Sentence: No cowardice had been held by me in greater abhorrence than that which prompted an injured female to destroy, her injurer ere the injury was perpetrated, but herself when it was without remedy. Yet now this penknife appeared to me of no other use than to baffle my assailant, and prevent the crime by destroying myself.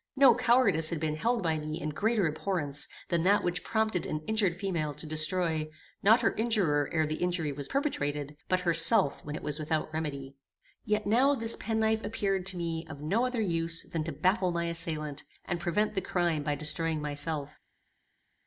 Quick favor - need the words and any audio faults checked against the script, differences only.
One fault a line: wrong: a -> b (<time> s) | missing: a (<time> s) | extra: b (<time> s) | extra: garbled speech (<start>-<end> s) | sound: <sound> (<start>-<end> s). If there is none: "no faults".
extra: not (6.0 s)